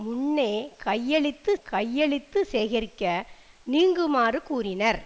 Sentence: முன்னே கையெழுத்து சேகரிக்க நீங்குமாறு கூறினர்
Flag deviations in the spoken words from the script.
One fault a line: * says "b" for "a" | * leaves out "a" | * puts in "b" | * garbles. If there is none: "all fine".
* puts in "கையெழுத்து"